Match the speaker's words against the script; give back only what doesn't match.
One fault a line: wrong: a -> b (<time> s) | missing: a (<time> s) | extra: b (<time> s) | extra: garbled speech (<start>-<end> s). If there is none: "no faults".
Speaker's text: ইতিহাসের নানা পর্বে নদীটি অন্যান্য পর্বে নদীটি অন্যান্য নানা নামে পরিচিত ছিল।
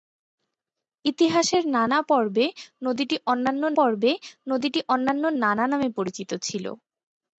no faults